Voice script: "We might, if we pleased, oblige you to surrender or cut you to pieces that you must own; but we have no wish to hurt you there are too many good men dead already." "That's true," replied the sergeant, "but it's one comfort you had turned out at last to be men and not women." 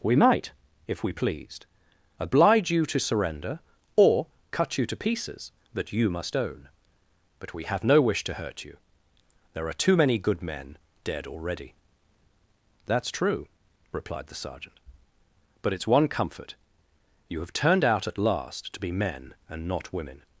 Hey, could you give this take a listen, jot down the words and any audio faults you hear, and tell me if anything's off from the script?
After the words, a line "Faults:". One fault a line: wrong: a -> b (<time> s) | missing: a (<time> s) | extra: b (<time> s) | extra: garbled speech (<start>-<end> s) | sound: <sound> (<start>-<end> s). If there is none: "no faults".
"We might, if we pleased, oblige you to surrender or cut you to pieces that you must own; but we have no wish to hurt you there are too many good men dead already." "That's true," replied the sergeant, "but it's one comfort you have turned out at last to be men and not women."
Faults:
wrong: had -> have (17.4 s)